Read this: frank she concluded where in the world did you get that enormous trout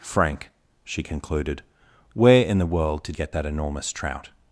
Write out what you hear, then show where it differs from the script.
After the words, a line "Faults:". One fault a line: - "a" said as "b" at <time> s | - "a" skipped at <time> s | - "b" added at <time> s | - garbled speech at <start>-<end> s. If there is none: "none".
frank she concluded where in the world did get that enormous trout
Faults:
- "you" skipped at 3.2 s